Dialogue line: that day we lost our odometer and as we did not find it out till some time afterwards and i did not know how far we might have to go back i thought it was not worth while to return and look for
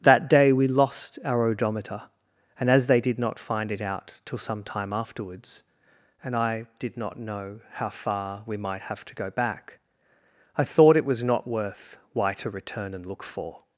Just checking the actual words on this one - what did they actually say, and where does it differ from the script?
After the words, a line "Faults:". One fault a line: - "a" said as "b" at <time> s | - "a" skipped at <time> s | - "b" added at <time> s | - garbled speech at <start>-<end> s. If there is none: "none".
that day we lost our odometer and as they did not find it out till some time afterwards and i did not know how far we might have to go back i thought it was not worth why to return and look for
Faults:
- "we" said as "they" at 2.9 s
- "while" said as "why" at 12.1 s